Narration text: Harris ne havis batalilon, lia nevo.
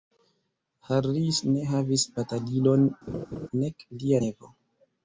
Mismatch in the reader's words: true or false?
true